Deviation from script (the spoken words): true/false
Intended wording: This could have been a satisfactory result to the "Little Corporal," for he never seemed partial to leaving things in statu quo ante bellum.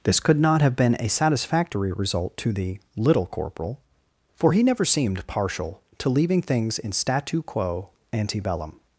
true